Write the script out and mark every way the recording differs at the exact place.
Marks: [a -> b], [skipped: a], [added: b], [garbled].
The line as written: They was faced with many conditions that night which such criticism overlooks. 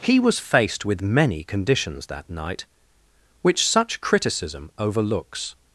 [They -> He] was faced with many conditions that night which such criticism overlooks.